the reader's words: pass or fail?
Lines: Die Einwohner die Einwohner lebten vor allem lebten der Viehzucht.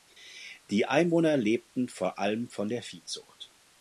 fail